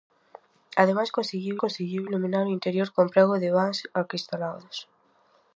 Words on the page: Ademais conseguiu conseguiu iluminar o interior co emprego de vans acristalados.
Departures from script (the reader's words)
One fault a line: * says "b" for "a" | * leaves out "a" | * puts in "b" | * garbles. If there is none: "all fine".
all fine